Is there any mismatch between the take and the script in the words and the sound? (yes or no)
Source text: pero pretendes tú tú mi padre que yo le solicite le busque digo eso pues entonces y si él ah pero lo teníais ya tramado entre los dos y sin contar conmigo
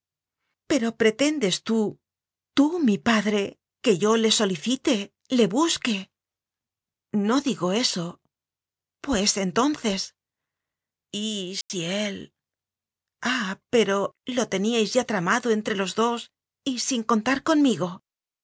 yes